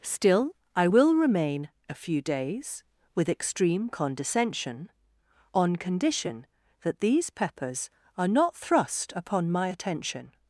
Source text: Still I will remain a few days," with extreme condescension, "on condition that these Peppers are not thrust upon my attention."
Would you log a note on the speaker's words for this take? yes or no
no